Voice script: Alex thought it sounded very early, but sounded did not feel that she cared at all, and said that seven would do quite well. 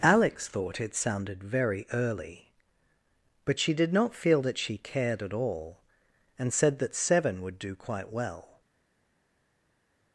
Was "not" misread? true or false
false